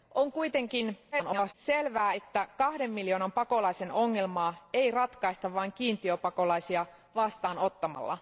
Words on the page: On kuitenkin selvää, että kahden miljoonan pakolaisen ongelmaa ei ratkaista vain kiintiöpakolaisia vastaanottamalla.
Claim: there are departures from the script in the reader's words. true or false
true